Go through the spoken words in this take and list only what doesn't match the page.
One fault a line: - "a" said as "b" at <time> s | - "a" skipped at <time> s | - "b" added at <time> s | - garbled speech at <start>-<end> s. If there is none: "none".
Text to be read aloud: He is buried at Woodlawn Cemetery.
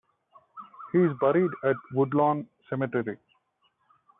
none